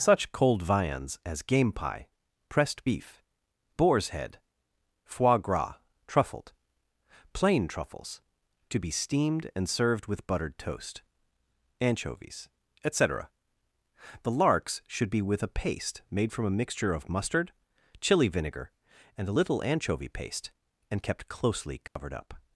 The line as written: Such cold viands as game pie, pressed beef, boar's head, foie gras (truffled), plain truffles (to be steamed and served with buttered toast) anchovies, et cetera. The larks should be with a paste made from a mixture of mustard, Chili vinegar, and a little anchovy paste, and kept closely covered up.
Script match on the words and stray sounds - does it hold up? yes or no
no